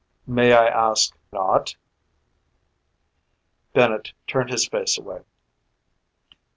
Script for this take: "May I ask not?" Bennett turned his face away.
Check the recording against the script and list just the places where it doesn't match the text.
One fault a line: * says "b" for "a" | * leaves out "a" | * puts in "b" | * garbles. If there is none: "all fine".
all fine